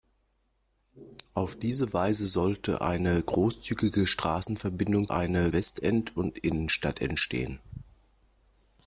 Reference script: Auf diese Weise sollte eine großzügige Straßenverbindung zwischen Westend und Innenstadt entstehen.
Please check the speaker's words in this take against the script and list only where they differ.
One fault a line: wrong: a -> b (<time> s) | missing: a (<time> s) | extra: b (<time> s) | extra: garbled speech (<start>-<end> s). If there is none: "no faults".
wrong: zwischen -> eine (5.1 s)